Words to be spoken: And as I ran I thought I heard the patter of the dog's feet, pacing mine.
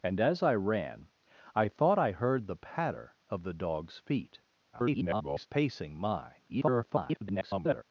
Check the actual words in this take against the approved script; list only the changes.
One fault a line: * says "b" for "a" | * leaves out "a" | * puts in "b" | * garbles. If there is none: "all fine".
* garbles
* garbles